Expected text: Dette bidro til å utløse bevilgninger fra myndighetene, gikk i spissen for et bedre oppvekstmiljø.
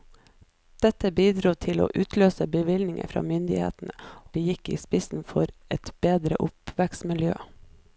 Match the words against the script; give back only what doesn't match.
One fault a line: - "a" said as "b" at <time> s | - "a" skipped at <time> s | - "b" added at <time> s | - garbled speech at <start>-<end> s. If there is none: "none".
none